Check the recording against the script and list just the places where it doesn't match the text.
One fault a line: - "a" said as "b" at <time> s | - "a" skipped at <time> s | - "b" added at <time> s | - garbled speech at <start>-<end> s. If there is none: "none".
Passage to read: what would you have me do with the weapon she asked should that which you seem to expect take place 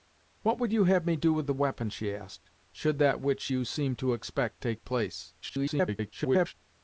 - garbled speech at 5.4-6.5 s